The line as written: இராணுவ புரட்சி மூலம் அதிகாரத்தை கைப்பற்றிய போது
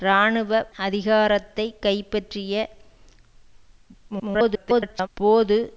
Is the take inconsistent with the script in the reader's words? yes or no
yes